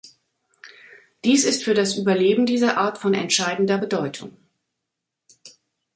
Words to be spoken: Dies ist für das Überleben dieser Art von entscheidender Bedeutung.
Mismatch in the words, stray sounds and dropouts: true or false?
false